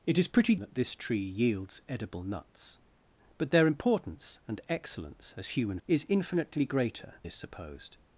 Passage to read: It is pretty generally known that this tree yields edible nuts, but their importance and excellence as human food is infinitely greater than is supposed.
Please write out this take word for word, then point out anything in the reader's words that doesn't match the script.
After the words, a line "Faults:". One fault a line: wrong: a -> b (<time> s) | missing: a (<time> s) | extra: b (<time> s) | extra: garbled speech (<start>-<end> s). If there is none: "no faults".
It is pretty that this tree yields edible nuts, but their importance and excellence as human is infinitely greater is supposed.
Faults:
missing: generally known (0.6 s)
missing: food (5.8 s)
missing: than (7.1 s)